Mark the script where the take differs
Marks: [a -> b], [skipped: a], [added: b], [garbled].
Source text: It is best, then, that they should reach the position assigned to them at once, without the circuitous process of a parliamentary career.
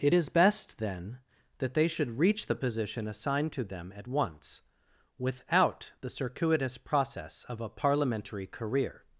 It is best, then, that they should reach the position assigned to them at once, without the circuitous process of a parliamentary career.